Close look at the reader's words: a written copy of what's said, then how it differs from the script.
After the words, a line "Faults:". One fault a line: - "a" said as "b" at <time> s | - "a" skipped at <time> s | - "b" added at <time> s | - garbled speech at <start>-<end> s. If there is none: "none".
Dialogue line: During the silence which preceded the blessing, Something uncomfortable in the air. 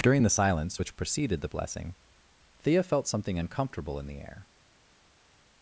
During the silence which preceded the blessing, Thea felt something uncomfortable in the air.
Faults:
- "Thea felt" added at 2.6 s